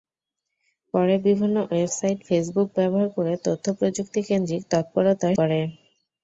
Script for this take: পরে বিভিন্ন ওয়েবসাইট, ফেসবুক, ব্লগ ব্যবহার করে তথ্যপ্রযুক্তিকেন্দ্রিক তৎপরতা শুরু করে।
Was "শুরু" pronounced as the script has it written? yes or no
no